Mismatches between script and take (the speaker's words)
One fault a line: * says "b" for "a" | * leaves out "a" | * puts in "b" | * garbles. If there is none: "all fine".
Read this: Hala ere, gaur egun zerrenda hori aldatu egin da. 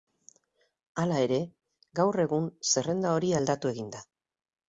all fine